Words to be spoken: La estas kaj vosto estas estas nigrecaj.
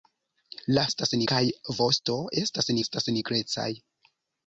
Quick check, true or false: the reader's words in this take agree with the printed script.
true